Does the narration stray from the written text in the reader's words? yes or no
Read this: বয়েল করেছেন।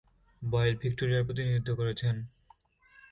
yes